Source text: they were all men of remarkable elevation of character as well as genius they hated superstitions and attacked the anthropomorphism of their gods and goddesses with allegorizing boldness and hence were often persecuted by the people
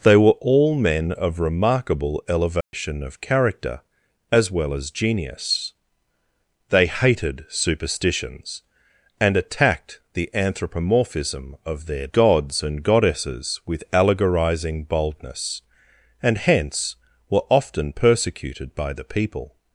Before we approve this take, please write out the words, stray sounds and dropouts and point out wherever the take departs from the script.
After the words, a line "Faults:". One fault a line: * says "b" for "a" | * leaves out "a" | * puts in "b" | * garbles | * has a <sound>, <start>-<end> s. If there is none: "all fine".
they were all men of remarkable elevation of character as well as genius they hated superstitions and attacked the anthropomorphism of their gods and goddesses with allegorizing boldness and hence were often persecuted by the people
Faults:
* has a dropout, 2.6-2.7 s